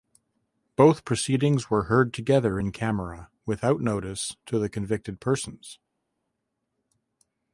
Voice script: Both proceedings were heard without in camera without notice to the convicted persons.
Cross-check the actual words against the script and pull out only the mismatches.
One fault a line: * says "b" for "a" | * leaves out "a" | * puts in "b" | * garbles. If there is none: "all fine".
* says "together" for "without"